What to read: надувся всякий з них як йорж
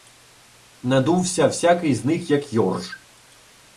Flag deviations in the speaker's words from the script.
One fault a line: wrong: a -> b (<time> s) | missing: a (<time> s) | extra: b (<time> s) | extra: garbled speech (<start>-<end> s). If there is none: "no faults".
no faults